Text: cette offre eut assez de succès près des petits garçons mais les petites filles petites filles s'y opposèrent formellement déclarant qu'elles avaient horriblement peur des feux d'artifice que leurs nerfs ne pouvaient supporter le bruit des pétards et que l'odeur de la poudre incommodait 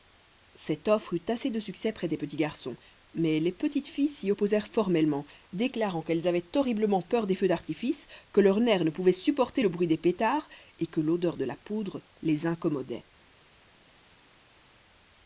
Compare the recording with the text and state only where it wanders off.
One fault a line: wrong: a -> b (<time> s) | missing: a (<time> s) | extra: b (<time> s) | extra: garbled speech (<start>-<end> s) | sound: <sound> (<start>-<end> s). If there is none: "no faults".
missing: petites filles (4.1 s)
extra: les (12.2 s)